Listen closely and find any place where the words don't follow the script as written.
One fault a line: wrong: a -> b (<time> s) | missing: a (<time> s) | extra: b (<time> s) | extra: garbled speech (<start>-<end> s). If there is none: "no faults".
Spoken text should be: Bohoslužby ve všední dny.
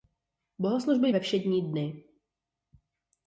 no faults